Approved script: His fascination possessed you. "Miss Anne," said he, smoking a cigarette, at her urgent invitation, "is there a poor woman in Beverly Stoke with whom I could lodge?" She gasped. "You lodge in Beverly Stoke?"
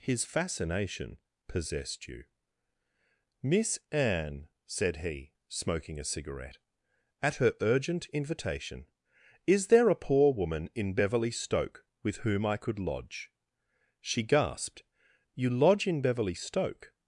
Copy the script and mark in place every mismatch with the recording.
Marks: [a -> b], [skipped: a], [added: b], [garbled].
His fascination possessed you. "Miss Anne," said he, smoking a cigarette, at her urgent invitation, "is there a poor woman in Beverly Stoke with whom I could lodge?" She gasped. "You lodge in Beverly Stoke?"